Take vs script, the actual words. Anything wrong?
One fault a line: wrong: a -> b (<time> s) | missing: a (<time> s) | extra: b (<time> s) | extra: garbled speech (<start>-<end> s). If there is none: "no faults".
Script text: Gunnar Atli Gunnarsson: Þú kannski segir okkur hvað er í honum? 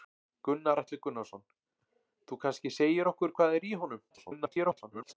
extra: garbled speech (4.1-5.1 s)